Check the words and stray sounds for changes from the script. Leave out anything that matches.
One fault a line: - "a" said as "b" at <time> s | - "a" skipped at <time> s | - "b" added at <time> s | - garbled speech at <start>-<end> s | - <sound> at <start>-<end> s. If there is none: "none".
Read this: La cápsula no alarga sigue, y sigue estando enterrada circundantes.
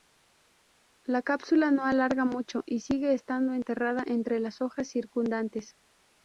- "sigue" said as "mucho" at 2.2 s
- "entre las hojas" added at 4.0 s